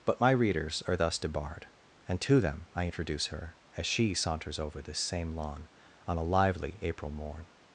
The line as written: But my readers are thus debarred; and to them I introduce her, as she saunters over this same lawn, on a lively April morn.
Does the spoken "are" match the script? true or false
true